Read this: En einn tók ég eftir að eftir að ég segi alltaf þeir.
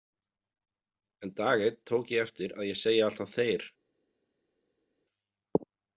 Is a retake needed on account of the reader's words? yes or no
yes